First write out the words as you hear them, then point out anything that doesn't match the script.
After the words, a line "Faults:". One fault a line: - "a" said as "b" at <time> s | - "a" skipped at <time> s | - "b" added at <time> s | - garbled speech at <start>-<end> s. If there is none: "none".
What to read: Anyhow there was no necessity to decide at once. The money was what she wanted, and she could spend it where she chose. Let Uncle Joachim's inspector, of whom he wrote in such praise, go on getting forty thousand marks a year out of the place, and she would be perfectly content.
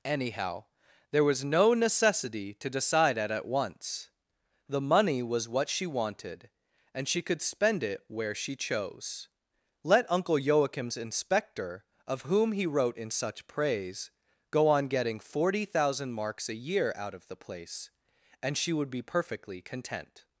Anyhow there was no necessity to decide at at once. The money was what she wanted, and she could spend it where she chose. Let Uncle Joachim's inspector, of whom he wrote in such praise, go on getting forty thousand marks a year out of the place, and she would be perfectly content.
Faults:
- "at" added at 3.3 s